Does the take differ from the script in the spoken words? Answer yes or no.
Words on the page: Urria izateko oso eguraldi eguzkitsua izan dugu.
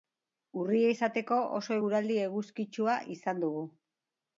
no